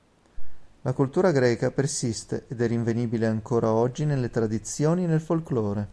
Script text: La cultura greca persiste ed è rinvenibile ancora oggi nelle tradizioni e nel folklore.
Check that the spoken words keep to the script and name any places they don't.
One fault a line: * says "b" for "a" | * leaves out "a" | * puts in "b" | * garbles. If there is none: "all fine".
all fine